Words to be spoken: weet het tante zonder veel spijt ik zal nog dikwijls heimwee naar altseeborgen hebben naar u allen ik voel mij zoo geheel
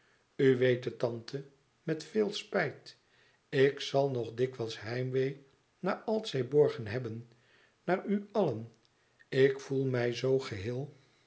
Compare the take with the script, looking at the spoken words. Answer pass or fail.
fail